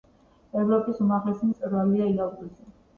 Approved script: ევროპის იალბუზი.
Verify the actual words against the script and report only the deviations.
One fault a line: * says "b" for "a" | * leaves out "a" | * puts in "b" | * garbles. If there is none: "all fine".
* puts in "უმაღლესი მწვერვალია"